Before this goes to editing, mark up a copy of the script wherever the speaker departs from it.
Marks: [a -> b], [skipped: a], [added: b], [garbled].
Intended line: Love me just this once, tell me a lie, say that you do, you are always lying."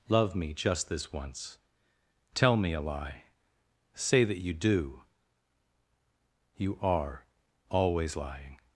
Love me just this once, tell me a lie, say that you do, you are always lying."